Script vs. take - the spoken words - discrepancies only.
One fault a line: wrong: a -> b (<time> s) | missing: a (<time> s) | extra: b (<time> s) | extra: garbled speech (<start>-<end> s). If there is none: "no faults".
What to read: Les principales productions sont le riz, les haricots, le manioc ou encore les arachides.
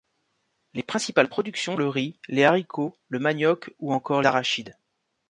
missing: sont (1.8 s)
missing: les (4.2 s)